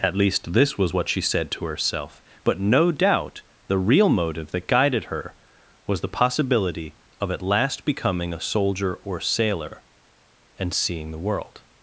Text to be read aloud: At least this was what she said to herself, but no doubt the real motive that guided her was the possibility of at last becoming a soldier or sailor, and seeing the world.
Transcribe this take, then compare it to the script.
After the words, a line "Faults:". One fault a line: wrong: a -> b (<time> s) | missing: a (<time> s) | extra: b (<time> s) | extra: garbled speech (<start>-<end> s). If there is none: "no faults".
At least this was what she said to herself, but no doubt the real motive that guided her was the possibility of at last becoming a soldier or sailor, and seeing the world.
Faults:
no faults